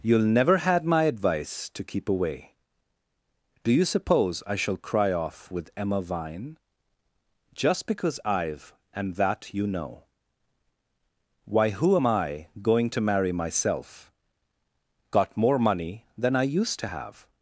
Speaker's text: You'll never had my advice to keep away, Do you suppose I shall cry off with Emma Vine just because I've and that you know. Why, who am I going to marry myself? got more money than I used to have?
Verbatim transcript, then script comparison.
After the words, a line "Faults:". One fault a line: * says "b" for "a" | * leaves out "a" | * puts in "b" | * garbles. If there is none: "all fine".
You'll never had my advice to keep away, Do you suppose I shall cry off with Emma Vine just because I've and that you know. Why, who am I going to marry myself? got more money than I used to have?
Faults:
all fine